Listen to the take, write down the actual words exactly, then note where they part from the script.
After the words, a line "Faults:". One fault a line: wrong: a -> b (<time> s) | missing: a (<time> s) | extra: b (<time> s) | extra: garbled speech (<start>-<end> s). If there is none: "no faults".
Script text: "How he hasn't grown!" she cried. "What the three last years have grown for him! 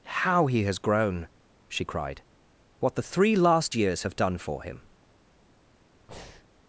"How he has grown!" she cried. "What the three last years have done for him!
Faults:
wrong: hasn't -> has (0.6 s)
wrong: grown -> done (4.2 s)